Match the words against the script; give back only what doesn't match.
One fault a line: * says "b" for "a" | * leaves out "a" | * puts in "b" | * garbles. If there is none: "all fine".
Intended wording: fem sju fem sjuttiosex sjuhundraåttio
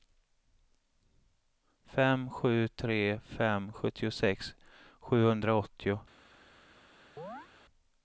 * puts in "tre"